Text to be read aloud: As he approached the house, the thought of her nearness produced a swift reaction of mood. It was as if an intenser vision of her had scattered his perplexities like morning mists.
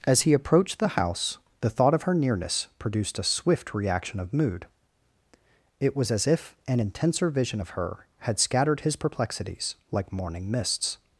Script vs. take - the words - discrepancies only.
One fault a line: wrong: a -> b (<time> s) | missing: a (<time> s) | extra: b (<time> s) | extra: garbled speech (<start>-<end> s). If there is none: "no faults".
no faults